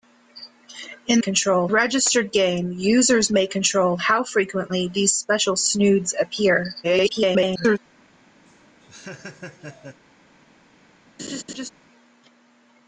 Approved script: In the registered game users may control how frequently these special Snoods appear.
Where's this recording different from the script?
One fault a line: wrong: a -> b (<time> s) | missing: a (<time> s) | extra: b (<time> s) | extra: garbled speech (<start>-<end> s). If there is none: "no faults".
wrong: the -> control (1.2 s)
extra: garbled speech (6.8-7.8 s)